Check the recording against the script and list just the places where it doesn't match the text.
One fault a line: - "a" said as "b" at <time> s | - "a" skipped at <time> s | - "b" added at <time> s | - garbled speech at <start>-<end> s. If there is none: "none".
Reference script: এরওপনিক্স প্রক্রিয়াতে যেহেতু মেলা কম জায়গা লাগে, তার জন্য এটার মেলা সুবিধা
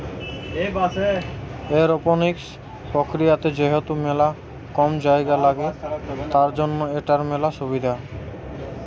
none